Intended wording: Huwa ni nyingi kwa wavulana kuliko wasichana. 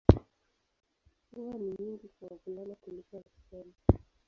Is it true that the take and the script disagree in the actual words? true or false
false